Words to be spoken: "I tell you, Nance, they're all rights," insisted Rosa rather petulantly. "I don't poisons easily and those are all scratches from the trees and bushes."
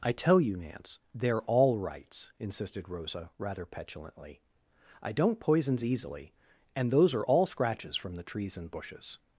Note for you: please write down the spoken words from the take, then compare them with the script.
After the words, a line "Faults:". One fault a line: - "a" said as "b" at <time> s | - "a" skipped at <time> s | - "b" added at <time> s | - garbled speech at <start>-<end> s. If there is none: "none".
"I tell you, Nance, they're all rights," insisted Rosa rather petulantly. "I don't poisons easily and those are all scratches from the trees and bushes."
Faults:
none